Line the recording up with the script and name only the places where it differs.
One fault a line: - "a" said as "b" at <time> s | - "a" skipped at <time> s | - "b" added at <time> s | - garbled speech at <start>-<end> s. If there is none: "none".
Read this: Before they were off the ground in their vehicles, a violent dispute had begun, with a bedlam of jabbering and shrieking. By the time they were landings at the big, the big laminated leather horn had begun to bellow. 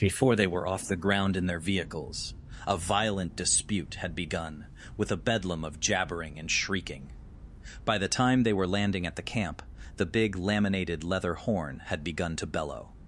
- "landings" said as "landing" at 8.7 s
- "big" said as "camp" at 9.2 s